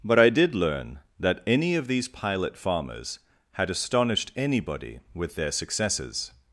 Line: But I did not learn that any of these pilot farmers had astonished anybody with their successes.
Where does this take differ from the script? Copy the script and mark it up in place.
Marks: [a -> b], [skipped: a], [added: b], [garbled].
But I did [skipped: not] learn that any of these pilot farmers had astonished anybody with their successes.